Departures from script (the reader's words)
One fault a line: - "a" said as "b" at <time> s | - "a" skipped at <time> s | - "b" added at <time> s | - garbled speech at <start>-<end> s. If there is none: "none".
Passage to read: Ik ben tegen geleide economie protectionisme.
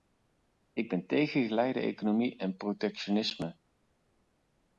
- "en" added at 2.4 s